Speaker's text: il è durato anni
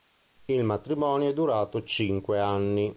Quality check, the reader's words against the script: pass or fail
fail